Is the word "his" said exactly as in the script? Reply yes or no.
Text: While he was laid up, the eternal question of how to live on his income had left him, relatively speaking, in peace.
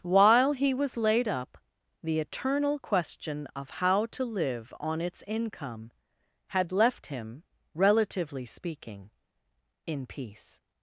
no